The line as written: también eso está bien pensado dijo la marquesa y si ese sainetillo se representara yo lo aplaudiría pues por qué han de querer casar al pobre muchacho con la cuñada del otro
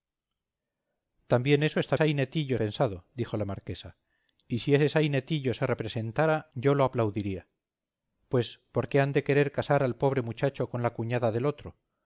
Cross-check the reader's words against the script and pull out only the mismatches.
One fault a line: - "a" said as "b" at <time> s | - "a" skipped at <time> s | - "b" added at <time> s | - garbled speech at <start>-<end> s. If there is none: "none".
- "bien" said as "sainetillo" at 1.9 s